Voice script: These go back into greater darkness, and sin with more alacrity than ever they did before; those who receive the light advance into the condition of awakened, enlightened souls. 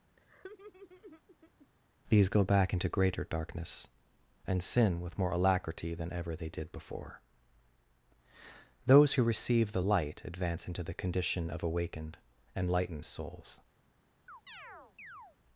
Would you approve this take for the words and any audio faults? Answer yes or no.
no